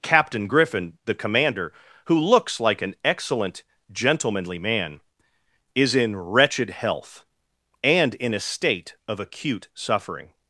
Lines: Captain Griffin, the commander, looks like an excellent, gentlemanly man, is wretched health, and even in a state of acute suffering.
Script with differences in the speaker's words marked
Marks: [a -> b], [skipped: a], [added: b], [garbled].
Captain Griffin, the commander, [added: who] looks like an excellent, gentlemanly man, is [added: in] wretched health, and [skipped: even] in a state of acute suffering.